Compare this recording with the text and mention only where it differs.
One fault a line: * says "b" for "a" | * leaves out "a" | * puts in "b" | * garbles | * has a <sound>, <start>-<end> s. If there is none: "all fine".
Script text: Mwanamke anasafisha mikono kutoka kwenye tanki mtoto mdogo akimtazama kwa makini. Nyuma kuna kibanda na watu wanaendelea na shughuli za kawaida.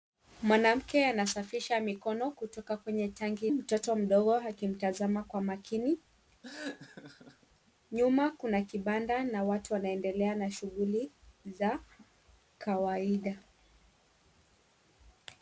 * has a laugh, 6.4-7.5 s